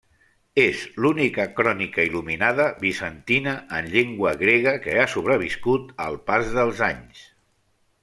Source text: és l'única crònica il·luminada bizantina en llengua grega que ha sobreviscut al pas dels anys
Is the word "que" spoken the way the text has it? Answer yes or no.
yes